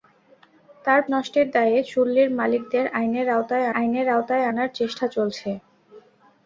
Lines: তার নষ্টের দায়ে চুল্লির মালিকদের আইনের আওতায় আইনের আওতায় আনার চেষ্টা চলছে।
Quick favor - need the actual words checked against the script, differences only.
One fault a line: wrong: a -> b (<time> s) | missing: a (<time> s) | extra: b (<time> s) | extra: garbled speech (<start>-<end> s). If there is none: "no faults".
no faults